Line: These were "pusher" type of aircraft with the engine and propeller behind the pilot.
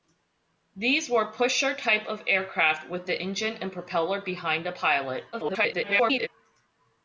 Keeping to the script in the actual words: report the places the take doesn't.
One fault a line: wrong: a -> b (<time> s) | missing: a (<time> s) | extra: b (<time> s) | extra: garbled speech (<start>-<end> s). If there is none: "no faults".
extra: garbled speech (5.3-6.3 s)